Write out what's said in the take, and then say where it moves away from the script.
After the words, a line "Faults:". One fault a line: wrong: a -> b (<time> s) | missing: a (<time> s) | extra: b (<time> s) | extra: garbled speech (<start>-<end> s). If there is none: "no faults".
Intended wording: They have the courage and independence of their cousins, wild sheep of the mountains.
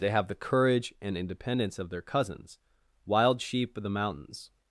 They have the courage and independence of their cousins, wild sheep of the mountains.
Faults:
no faults